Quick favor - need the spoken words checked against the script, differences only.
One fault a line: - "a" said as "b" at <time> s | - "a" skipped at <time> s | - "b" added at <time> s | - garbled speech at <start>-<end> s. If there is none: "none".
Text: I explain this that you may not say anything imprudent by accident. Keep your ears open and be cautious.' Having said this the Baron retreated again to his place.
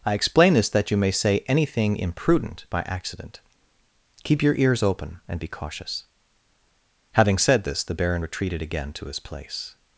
- "not" skipped at 1.1 s